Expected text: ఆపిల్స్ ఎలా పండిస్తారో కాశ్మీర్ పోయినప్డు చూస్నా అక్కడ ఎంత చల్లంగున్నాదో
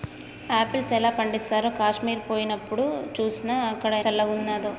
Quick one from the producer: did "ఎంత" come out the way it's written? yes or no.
no